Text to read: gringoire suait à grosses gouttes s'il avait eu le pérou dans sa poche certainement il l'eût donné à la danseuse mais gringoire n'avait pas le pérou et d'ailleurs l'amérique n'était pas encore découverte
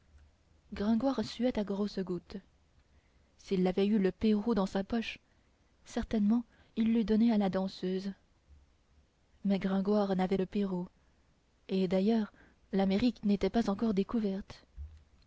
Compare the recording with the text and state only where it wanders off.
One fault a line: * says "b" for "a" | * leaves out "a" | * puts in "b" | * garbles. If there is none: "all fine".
* leaves out "pas"